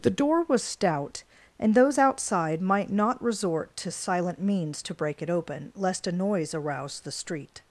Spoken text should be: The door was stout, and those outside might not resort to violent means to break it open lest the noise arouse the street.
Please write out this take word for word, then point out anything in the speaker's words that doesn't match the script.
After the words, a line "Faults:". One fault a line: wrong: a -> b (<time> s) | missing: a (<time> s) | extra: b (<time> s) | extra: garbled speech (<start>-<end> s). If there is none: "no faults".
The door was stout, and those outside might not resort to silent means to break it open lest a noise arouse the street.
Faults:
wrong: violent -> silent (3.9 s)
wrong: the -> a (6.1 s)